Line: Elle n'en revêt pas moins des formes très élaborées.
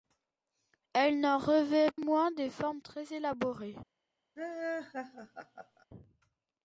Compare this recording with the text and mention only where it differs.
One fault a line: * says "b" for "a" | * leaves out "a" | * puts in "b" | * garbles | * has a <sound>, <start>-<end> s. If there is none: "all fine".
* leaves out "pas"
* has a laugh, 4.4-5.9 s